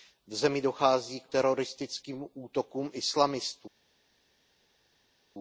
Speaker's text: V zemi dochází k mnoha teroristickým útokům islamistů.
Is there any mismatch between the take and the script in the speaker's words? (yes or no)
yes